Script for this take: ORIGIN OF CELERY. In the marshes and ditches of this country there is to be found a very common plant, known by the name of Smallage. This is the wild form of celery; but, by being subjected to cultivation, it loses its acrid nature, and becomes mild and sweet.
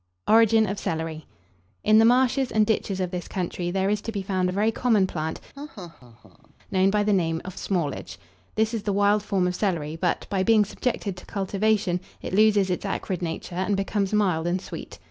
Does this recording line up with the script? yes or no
yes